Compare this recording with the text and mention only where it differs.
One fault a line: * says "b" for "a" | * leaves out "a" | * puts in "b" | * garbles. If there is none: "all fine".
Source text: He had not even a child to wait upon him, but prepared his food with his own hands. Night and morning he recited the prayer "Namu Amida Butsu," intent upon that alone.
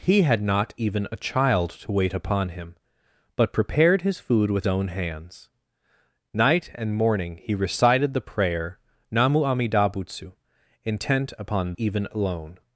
* leaves out "his"
* says "even" for "that"